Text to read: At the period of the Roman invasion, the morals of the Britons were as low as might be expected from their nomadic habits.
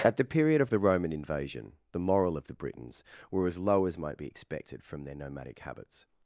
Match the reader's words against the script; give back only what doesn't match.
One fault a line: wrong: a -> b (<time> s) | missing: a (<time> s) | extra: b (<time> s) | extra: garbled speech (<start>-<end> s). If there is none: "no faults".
wrong: morals -> moral (2.0 s)